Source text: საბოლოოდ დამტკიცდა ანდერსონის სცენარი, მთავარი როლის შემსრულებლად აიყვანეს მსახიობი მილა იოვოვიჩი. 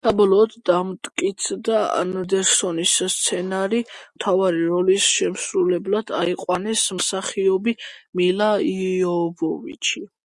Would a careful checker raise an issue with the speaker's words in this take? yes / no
no